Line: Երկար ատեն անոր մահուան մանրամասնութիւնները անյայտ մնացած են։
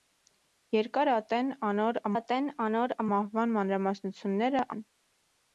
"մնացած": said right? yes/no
no